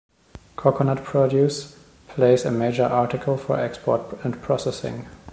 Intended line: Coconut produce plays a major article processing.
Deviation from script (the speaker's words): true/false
true